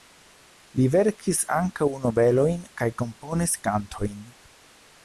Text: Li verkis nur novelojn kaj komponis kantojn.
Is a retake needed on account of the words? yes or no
yes